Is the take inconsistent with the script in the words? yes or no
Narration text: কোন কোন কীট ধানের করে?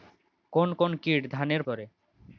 no